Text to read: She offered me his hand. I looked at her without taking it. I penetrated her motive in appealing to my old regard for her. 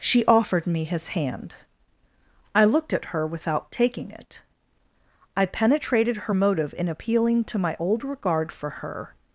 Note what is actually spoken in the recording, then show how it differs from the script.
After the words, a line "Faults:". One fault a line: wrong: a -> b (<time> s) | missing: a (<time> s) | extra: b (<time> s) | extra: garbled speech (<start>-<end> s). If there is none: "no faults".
She offered me his hand. I looked at her without taking it. I penetrated her motive in appealing to my old regard for her.
Faults:
no faults